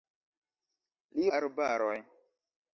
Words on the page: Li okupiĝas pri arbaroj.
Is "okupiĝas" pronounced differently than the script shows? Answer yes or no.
yes